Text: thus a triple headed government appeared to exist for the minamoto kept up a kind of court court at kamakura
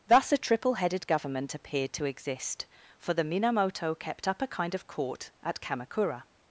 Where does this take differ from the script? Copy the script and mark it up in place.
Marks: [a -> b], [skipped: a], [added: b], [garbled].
thus a triple headed government appeared to exist for the minamoto kept up a kind of court [skipped: court] at kamakura